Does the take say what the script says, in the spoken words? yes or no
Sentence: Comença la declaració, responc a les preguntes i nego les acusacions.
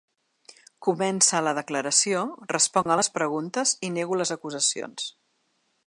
yes